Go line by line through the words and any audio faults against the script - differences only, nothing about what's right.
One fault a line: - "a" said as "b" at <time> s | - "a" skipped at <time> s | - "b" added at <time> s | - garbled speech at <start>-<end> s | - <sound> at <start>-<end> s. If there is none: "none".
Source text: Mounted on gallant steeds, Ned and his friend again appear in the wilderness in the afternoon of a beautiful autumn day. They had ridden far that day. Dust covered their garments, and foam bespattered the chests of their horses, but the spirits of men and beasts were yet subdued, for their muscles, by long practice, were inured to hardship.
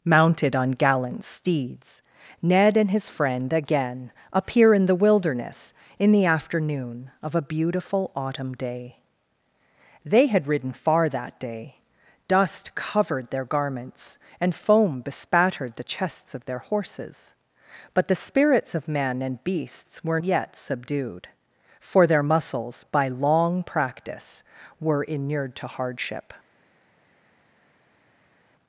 none